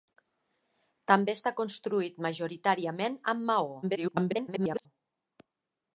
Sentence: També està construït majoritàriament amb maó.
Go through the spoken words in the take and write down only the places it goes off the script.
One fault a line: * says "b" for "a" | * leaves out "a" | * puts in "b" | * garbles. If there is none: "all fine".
* garbles